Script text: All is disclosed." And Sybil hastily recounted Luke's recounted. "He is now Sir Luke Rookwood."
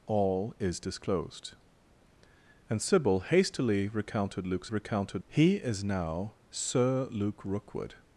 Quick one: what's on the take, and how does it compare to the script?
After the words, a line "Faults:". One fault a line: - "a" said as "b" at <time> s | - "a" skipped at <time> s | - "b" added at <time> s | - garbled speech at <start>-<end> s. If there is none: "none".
All is disclosed." And Sybil hastily recounted Luke's recounted. "He is now Sir Luke Rookwood."
Faults:
none